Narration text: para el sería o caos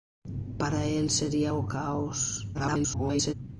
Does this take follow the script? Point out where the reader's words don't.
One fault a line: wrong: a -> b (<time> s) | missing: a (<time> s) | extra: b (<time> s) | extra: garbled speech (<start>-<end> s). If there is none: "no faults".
extra: garbled speech (2.5-3.3 s)